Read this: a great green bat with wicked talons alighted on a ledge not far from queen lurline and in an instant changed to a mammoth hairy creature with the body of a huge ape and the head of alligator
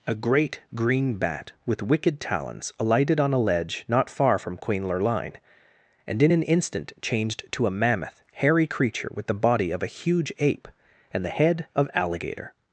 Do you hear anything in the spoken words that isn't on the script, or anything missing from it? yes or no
no